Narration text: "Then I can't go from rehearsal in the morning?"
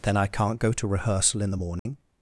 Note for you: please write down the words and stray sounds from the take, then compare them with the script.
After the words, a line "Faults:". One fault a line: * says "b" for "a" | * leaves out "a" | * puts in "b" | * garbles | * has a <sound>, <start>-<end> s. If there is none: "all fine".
"Then I can't go to rehearsal in the morning?"
Faults:
* says "to" for "from"
* has a dropout, 1.8-1.9 s